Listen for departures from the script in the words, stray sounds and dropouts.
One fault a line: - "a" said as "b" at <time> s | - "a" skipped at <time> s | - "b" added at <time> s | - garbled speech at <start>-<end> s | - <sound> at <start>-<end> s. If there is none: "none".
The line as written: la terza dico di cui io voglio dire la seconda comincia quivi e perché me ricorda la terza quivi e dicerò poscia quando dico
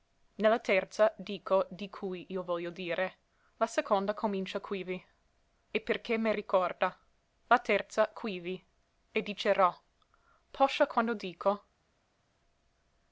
none